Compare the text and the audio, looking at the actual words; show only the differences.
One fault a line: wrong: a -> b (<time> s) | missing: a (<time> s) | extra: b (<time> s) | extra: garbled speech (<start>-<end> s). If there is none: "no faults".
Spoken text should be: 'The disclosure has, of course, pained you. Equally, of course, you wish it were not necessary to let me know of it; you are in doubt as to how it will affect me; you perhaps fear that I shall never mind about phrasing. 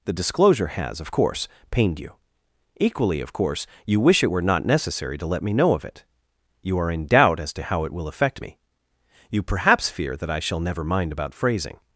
no faults